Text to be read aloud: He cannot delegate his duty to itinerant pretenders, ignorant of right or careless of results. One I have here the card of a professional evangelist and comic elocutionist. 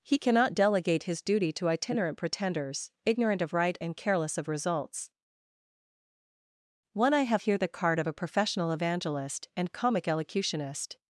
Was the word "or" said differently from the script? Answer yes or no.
yes